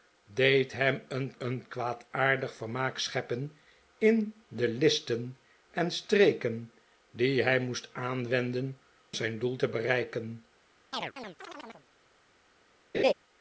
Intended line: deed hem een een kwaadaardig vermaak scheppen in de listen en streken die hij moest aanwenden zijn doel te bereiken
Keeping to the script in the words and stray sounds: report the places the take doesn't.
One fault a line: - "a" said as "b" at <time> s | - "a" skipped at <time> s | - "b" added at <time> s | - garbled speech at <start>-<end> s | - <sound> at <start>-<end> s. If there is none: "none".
- chirp at 10.9-11.9 s
- laugh at 12.9-13.1 s